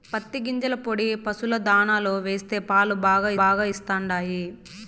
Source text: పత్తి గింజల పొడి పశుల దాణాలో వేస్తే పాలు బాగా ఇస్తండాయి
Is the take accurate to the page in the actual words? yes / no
no